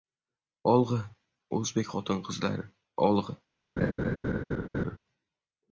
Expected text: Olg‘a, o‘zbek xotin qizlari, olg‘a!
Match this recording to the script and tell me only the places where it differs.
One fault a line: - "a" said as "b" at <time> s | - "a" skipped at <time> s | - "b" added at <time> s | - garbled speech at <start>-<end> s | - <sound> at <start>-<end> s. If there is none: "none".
- laugh at 3.8-5.0 s